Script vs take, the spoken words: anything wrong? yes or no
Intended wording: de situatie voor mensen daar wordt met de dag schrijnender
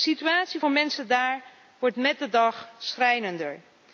no